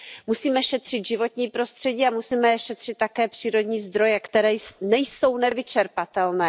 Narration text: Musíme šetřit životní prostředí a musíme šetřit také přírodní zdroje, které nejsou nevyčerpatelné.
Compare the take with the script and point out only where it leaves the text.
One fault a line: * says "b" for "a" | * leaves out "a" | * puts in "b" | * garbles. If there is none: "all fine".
all fine